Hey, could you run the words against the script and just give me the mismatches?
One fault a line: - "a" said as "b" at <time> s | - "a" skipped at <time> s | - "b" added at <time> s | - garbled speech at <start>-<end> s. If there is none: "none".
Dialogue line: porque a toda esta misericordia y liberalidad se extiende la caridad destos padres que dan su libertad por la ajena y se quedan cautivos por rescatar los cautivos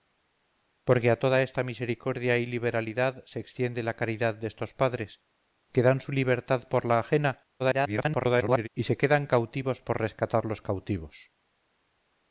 - garbled speech at 7.6-8.7 s